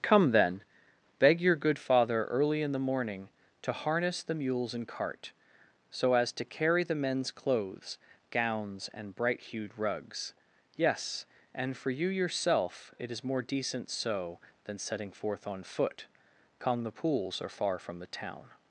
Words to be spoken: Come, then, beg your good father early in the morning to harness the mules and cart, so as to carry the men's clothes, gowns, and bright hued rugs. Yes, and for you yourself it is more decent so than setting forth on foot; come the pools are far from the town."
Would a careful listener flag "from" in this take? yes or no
no